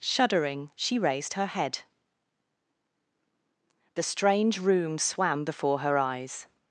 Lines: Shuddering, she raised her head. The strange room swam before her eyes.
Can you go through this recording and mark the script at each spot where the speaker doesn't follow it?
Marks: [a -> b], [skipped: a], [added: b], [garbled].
Shuddering, she raised her head. The strange room swam before her eyes.